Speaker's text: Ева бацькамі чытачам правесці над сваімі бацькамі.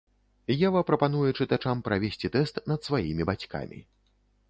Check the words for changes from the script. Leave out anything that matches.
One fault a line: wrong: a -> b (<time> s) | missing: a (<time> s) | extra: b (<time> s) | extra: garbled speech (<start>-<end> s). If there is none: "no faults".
wrong: бацькамі -> прапануе (0.9 s)
extra: тэст (2.4 s)